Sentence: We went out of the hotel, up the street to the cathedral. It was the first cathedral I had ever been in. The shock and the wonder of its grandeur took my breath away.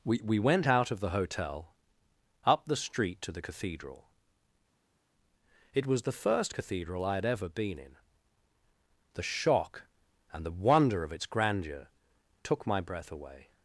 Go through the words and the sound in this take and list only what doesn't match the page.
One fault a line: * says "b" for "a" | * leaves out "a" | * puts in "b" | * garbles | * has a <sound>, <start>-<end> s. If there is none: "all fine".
* puts in "we"